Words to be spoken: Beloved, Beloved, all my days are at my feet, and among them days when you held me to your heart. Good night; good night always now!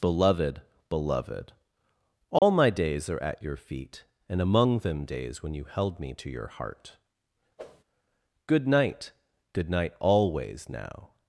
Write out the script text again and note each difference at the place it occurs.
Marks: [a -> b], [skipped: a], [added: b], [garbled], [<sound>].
Beloved, Beloved, all [dropout] my days are at [my -> your] feet, and among them days when you held me to your heart. [whoosh] Good night; good night always now!